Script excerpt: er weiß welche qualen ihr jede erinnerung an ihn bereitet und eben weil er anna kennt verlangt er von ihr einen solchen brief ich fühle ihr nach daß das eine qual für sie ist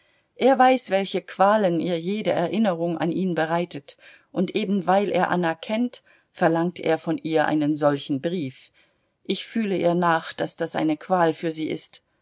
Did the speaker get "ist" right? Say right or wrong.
right